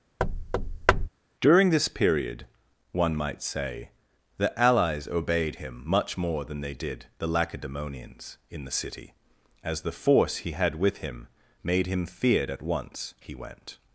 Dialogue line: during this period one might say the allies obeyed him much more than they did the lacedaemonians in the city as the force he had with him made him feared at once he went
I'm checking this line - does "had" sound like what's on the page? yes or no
yes